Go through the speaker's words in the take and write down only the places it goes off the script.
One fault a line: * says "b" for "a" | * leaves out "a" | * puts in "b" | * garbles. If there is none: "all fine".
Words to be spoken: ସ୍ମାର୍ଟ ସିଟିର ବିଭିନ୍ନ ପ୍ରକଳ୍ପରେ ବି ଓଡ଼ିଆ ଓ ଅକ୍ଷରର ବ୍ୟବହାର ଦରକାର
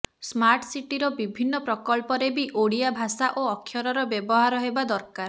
* puts in "ଭାଷା"
* puts in "ହେବା"